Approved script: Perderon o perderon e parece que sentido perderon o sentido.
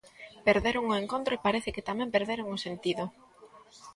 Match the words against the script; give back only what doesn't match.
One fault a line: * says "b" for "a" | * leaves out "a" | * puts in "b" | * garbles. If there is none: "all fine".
* says "encontro" for "perderon"
* says "tamén" for "sentido"